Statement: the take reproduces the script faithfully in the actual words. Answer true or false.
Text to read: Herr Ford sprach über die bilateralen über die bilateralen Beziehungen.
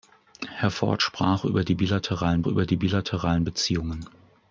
true